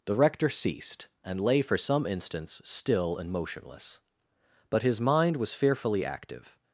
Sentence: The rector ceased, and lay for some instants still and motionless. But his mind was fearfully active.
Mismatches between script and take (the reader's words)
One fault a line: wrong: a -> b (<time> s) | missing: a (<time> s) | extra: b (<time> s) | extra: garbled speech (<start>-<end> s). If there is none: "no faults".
no faults